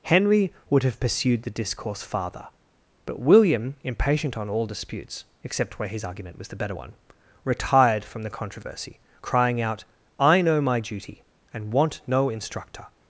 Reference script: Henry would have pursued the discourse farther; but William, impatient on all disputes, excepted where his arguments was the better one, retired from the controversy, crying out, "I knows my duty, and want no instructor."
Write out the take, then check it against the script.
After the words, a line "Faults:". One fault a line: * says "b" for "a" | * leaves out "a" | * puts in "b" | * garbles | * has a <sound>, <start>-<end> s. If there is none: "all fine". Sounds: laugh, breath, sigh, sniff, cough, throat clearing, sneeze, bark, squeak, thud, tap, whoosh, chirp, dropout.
Henry would have pursued the discourse farther; but William, impatient on all disputes, except where his argument was the better one, retired from the controversy, crying out, "I know my duty, and want no instructor."
Faults:
* says "except" for "excepted"
* says "argument" for "arguments"
* says "know" for "knows"